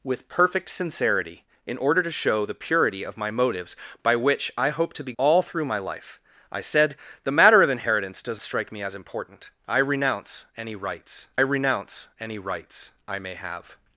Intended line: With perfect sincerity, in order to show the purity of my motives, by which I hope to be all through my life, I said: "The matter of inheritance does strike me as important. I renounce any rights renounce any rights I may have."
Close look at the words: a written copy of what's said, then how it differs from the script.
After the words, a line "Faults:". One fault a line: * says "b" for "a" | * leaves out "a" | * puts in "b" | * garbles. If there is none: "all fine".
With perfect sincerity, in order to show the purity of my motives, by which I hope to be all through my life, I said: "The matter of inheritance does strike me as important. I renounce any rights renounce any rights I may have."
Faults:
all fine